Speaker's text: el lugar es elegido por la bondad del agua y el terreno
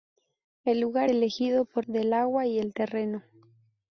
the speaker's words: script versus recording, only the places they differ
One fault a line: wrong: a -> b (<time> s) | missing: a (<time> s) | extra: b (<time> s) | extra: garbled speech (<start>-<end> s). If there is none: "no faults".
missing: es (1.1 s)
missing: la bondad (1.9 s)